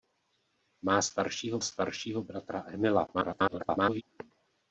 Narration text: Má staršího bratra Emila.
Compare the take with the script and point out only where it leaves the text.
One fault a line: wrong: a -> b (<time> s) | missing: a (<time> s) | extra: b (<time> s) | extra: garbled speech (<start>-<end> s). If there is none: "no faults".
extra: staršího (1.6 s)
extra: garbled speech (3.1-4.0 s)